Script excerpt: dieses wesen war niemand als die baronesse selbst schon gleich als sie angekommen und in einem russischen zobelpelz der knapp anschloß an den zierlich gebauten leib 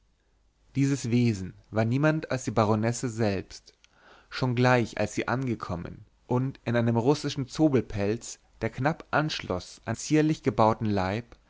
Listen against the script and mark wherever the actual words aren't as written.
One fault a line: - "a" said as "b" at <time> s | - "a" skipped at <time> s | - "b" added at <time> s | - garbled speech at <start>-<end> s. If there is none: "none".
- "den" skipped at 10.0 s